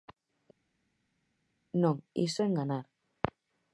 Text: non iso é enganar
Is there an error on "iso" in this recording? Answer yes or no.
no